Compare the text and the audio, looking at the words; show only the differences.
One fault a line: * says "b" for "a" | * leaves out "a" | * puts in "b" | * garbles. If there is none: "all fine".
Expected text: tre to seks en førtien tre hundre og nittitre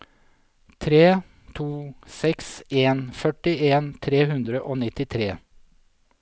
all fine